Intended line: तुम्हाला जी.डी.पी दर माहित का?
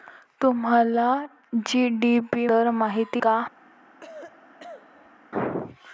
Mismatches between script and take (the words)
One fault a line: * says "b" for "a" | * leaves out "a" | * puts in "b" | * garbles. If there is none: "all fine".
all fine